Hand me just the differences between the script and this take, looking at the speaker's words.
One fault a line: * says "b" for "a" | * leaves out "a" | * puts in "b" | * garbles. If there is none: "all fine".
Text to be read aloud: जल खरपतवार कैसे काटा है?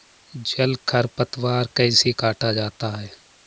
* puts in "जाता"